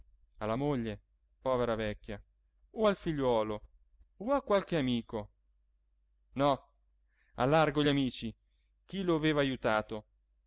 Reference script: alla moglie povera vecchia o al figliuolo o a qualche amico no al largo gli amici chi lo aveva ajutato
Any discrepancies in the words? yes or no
no